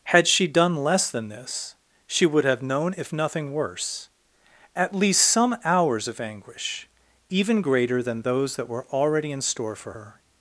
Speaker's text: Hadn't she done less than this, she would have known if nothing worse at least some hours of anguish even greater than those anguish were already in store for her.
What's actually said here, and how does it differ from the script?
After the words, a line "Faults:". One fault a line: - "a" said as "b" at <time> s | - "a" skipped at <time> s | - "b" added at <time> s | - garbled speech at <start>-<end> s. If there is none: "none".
Had she done less than this, she would have known if nothing worse at least some hours of anguish even greater than those that were already in store for her.
Faults:
- "Hadn't" said as "Had" at 0.0 s
- "anguish" said as "that" at 8.5 s